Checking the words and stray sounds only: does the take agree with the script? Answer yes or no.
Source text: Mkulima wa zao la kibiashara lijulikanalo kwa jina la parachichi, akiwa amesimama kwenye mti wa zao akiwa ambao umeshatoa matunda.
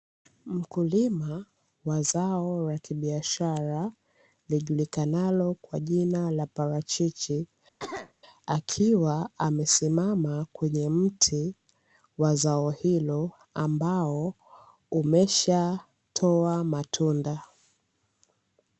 no